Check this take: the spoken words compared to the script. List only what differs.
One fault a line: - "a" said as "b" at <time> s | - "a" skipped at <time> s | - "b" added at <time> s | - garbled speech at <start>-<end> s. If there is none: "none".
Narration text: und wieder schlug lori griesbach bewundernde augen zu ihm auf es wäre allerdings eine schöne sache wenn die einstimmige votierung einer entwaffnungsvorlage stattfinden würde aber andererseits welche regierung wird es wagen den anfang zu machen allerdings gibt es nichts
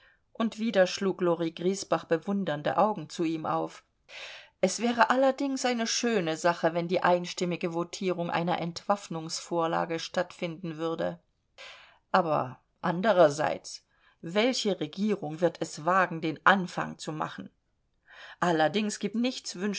- "es" skipped at 19.2 s